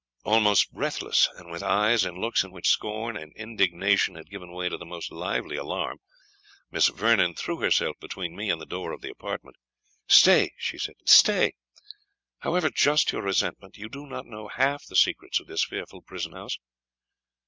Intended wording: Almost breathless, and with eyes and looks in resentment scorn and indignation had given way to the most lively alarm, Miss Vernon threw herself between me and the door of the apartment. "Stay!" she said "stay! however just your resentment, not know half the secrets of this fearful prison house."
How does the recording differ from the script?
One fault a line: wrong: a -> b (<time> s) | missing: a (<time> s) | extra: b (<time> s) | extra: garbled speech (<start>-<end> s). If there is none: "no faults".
wrong: resentment -> which (2.5 s)
extra: you do (13.8 s)